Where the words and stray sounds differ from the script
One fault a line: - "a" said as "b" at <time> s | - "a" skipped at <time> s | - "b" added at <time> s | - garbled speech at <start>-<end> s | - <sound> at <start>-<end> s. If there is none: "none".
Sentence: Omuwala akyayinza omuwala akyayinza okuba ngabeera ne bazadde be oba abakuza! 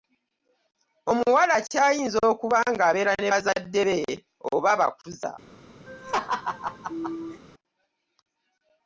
- "omuwala akyayinza" skipped at 2.2 s
- laugh at 5.9-7.4 s